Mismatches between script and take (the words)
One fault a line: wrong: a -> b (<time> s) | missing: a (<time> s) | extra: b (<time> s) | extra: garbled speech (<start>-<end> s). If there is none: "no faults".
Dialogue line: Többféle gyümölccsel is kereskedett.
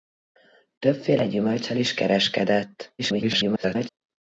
extra: garbled speech (3.0-3.9 s)